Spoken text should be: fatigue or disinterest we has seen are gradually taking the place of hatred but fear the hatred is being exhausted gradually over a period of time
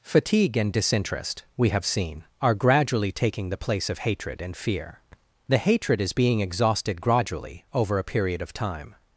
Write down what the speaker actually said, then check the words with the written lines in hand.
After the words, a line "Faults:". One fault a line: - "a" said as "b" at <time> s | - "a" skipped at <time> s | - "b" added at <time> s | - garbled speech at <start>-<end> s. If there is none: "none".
fatigue and disinterest we have seen are gradually taking the place of hatred and fear the hatred is being exhausted gradually over a period of time
Faults:
- "or" said as "and" at 0.6 s
- "has" said as "have" at 1.7 s
- "but" said as "and" at 4.4 s